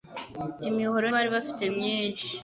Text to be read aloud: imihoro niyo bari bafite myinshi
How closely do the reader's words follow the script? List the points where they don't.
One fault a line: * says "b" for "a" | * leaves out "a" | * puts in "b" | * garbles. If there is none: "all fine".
* leaves out "niyo"